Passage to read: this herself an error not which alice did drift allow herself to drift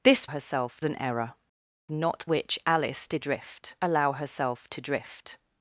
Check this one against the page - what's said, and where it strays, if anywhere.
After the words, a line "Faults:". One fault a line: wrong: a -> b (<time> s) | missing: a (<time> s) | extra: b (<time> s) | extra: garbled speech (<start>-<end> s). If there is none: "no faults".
this herself an error not which alice did drift allow herself to drift
Faults:
no faults